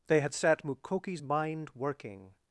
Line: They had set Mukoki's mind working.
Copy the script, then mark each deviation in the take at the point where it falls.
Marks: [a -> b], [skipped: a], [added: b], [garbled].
They had set Mukoki's mind working.